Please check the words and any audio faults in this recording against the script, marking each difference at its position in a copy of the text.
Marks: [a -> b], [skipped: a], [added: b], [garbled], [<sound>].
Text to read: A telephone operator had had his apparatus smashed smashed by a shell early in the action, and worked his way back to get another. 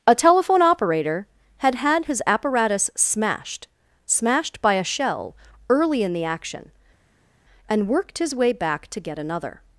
A telephone operator had had his apparatus smashed smashed by a shell early in the action, and worked his way back to get another.